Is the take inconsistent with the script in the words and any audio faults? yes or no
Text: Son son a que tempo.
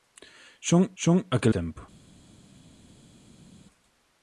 no